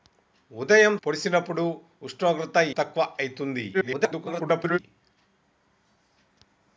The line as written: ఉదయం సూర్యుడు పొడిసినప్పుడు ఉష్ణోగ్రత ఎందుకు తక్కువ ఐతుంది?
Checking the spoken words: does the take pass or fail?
fail